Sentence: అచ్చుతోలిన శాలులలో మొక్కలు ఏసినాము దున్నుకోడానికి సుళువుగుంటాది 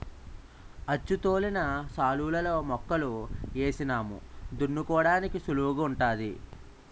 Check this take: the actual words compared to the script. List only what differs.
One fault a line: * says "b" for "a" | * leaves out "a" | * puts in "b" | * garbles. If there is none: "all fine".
all fine